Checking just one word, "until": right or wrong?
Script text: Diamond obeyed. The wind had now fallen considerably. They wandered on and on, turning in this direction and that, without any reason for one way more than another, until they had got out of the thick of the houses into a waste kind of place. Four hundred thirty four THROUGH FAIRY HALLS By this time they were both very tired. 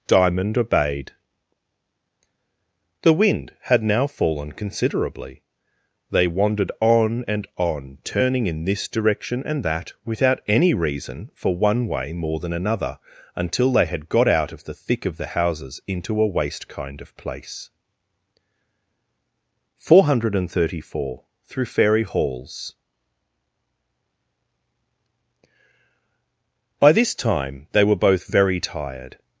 right